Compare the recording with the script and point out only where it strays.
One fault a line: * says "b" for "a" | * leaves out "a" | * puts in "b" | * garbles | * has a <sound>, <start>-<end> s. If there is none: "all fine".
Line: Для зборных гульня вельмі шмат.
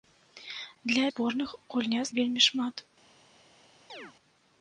* has a chirp, 3.9-4.1 s